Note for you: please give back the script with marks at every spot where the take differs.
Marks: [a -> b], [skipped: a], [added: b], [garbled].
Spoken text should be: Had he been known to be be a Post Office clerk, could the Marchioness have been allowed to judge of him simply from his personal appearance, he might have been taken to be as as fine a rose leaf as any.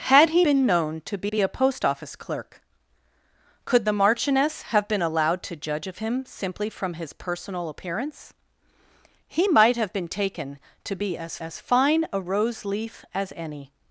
Had he been known to be be a Post Office clerk, could the Marchioness have been allowed to judge of him simply from his personal appearance, he might have been taken to be as as fine a rose leaf as any.